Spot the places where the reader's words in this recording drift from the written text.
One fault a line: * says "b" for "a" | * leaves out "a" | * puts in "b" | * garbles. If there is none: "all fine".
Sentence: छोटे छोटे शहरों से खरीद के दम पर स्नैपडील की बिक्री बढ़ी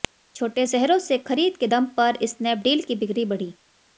* leaves out "छोटे"